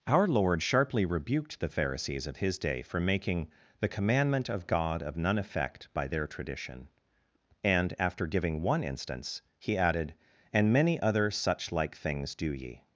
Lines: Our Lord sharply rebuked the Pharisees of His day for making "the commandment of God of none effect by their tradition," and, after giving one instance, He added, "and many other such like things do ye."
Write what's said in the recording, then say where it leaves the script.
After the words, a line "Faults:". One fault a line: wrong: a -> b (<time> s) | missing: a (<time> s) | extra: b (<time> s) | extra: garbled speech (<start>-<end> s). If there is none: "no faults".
Our Lord sharply rebuked the Pharisees of His day for making "the commandment of God of none effect by their tradition," and, after giving one instance, He added, "and many other such like things do ye."
Faults:
no faults